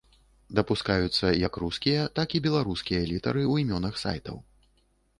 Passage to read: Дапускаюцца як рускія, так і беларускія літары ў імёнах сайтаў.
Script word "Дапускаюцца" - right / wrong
right